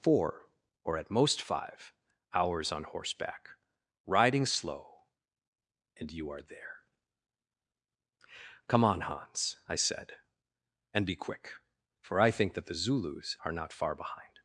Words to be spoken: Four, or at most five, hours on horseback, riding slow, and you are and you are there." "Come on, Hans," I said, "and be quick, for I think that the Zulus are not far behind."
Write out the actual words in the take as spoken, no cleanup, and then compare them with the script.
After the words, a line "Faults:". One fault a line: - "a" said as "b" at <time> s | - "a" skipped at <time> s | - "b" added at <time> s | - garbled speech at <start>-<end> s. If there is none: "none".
Four, or at most five, hours on horseback, riding slow, and you are there." "Come on, Hans," I said, "and be quick, for I think that the Zulus are not far behind."
Faults:
- "and you are" skipped at 6.4 s